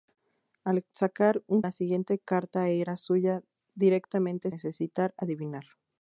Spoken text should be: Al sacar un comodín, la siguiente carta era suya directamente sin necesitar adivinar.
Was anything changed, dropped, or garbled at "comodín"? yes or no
yes